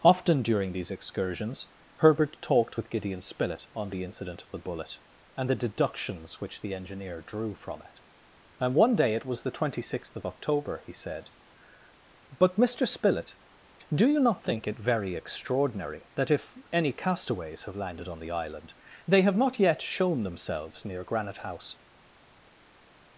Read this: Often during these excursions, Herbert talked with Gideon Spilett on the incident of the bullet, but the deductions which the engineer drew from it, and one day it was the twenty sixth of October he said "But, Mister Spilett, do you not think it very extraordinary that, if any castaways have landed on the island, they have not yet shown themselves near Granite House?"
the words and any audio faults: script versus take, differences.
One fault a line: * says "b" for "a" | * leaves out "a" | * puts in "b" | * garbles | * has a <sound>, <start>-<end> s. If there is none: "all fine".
* says "and" for "but"